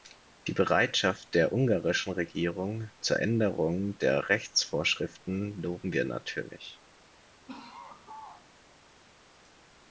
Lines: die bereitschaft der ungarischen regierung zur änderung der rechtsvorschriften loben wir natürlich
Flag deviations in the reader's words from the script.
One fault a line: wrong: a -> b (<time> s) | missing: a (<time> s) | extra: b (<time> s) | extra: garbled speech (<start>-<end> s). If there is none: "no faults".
no faults